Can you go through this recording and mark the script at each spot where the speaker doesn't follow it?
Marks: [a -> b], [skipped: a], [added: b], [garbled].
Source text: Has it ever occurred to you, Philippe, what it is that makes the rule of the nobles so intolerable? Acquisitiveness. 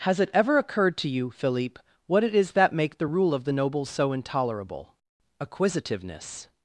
Has it ever occurred to you, Philippe, what it is that [makes -> make] the rule of the nobles so intolerable? Acquisitiveness.